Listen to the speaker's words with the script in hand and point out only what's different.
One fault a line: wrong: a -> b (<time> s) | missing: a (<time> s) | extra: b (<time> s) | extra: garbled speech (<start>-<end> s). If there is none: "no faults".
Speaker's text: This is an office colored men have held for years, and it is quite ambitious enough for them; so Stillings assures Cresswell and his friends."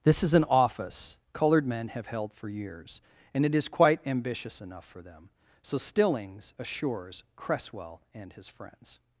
no faults